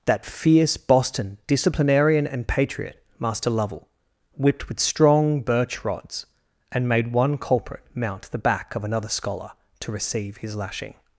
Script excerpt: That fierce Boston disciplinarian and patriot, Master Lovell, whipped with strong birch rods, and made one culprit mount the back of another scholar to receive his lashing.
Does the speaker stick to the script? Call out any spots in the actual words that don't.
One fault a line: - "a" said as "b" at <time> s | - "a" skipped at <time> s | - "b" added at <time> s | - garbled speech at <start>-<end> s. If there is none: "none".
none